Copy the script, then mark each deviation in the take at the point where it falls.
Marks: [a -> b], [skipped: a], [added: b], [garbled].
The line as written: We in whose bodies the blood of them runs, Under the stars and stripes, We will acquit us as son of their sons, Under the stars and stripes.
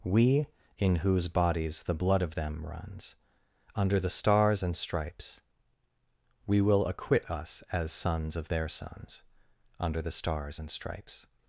We in whose bodies the blood of them runs, Under the stars and stripes, We will acquit us as [son -> sons] of their sons, Under the stars and stripes.